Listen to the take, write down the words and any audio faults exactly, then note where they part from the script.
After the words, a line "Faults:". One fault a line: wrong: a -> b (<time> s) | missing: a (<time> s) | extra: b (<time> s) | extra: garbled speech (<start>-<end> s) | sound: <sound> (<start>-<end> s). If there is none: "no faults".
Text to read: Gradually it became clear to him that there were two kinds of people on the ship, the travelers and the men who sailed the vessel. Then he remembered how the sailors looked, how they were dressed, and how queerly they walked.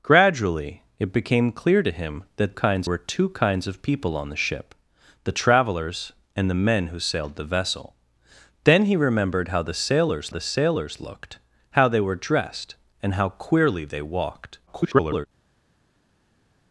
Gradually it became clear to him that kinds were two kinds of people on the ship, the travelers and the men who sailed the vessel. Then he remembered how the sailors the sailors looked, how they were dressed, and how queerly they walked. [garbled]
Faults:
wrong: there -> kinds (2.5 s)
extra: the sailors (10.3 s)
extra: garbled speech (14.7-15.3 s)